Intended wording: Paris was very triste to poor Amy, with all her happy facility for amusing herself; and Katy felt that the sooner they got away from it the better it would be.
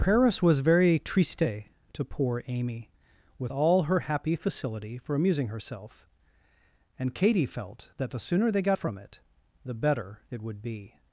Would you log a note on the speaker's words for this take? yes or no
yes